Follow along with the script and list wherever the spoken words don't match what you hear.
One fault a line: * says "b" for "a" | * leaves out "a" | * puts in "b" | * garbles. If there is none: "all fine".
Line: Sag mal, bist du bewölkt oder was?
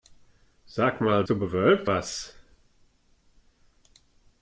* leaves out "bist"
* leaves out "oder"